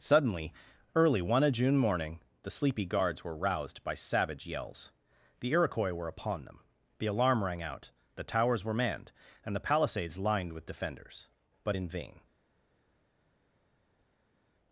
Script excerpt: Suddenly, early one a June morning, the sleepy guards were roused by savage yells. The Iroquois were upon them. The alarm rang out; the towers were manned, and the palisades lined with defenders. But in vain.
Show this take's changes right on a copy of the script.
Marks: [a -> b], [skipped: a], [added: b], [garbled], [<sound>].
Suddenly, early one a June morning, the sleepy guards were roused by savage yells. The Iroquois were upon them. The alarm rang out; the towers were manned, and the palisades lined with defenders. But in vain.